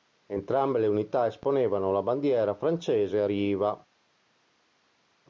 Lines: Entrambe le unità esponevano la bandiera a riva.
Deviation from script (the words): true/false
true